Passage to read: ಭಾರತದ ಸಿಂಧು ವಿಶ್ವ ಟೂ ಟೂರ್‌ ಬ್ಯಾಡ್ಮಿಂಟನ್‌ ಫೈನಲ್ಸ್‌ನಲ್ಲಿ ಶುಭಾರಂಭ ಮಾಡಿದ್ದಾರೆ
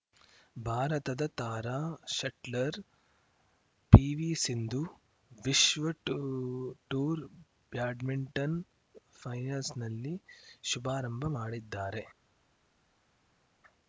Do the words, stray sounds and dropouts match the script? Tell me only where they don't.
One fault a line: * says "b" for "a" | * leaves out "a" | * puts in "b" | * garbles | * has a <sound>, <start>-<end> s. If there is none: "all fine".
* puts in "ತಾರಾ ಶಟ್ಲರ್ ಪಿವಿ"